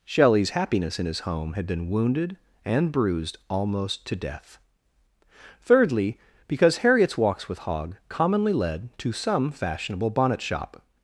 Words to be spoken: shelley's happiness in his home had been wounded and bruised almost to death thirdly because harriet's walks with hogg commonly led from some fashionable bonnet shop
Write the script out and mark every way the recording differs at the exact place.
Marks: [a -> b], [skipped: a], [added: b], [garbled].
shelley's happiness in his home had been wounded and bruised almost to death thirdly because harriet's walks with hogg commonly led [from -> to] some fashionable bonnet shop